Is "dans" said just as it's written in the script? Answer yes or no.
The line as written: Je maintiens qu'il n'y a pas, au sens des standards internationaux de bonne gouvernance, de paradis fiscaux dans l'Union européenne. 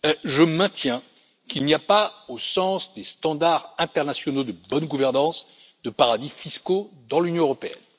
yes